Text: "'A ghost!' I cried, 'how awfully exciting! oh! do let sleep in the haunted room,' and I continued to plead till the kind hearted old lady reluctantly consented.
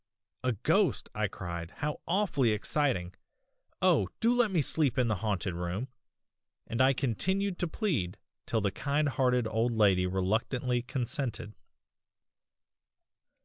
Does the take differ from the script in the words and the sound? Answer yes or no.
yes